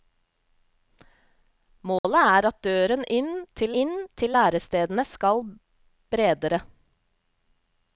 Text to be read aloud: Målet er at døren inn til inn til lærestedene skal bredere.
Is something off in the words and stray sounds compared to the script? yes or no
yes